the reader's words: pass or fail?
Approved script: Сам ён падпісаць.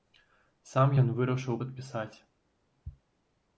fail